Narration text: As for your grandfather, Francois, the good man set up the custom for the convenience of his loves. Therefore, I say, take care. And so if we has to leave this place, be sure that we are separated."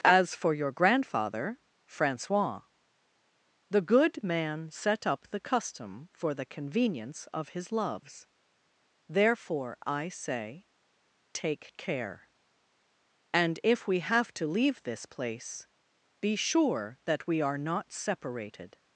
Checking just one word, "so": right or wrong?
wrong